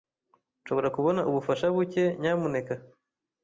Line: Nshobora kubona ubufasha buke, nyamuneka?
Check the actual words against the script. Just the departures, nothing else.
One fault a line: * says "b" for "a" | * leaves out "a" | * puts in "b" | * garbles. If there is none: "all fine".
all fine